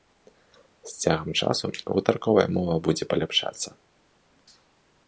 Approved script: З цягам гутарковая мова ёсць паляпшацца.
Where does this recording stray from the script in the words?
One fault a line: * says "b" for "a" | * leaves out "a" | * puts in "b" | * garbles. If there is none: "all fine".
* puts in "часу"
* says "будзе" for "ёсць"